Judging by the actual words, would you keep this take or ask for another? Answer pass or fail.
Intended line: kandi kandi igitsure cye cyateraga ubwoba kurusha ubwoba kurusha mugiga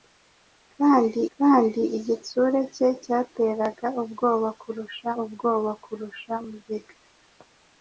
pass